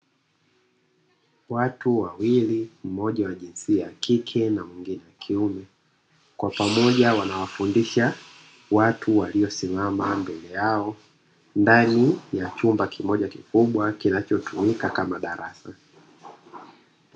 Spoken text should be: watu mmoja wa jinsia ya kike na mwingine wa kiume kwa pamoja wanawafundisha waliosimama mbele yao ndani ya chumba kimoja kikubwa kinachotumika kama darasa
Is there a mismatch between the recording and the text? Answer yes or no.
yes